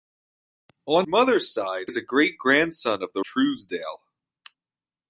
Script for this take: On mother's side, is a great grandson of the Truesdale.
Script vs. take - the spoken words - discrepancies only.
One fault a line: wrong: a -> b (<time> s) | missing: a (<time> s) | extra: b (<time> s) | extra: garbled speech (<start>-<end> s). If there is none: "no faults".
no faults